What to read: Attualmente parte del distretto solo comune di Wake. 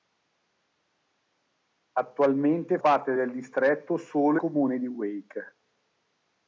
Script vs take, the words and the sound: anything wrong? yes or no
no